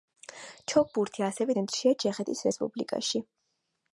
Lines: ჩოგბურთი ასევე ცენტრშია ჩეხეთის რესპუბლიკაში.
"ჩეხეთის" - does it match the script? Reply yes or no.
yes